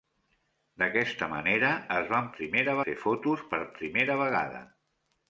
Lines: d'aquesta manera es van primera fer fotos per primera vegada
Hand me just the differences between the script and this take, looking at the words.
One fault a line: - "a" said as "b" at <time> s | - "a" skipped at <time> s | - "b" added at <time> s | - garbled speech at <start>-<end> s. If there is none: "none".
none